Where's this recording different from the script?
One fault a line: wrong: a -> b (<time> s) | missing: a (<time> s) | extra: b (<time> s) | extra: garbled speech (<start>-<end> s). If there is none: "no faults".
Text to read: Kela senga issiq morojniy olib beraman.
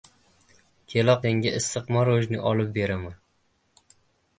no faults